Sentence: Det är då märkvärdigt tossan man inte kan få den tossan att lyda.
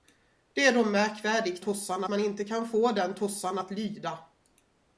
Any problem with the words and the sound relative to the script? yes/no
no